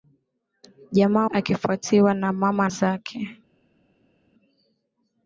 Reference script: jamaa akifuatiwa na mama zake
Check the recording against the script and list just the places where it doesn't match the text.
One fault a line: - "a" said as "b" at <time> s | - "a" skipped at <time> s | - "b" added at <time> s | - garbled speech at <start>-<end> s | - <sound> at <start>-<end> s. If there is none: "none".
none